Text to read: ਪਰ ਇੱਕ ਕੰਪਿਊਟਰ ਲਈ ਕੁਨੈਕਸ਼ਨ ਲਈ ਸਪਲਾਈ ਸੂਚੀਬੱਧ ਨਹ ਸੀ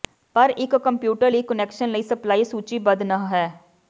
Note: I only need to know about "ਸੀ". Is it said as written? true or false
false